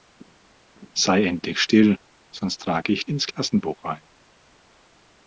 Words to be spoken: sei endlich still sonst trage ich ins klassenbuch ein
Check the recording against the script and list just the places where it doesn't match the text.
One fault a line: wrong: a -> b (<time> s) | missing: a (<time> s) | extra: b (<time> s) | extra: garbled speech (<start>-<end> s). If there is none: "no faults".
no faults